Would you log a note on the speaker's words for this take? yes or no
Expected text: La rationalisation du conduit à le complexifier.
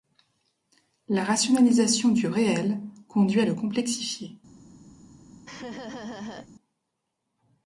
yes